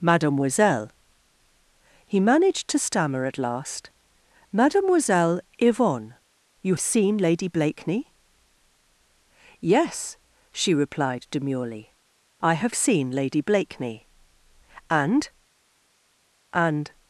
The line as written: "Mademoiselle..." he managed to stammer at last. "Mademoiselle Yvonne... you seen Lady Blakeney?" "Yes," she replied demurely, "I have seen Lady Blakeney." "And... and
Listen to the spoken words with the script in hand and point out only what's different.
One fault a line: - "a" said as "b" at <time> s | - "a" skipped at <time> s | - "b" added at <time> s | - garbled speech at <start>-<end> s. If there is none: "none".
none